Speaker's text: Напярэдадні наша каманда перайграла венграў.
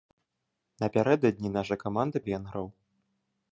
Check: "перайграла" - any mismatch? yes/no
yes